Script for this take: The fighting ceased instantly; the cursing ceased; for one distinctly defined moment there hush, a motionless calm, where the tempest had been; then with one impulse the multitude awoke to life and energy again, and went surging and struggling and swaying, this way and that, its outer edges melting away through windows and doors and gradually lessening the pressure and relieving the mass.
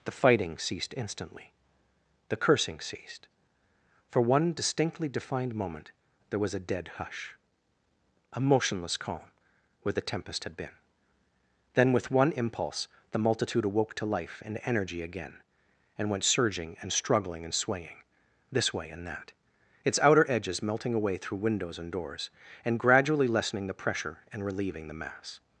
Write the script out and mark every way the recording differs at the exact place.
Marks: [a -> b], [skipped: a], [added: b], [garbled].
The fighting ceased instantly; the cursing ceased; for one distinctly defined moment there [added: was a dead] hush, a motionless calm, where the tempest had been; then with one impulse the multitude awoke to life and energy again, and went surging and struggling and swaying, this way and that, its outer edges melting away through windows and doors and gradually lessening the pressure and relieving the mass.